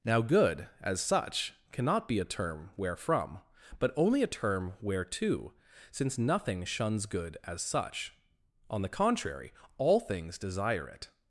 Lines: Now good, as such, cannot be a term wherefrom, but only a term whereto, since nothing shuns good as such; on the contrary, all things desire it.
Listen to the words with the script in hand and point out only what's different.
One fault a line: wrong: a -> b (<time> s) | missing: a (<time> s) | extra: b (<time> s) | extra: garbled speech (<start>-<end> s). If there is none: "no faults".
no faults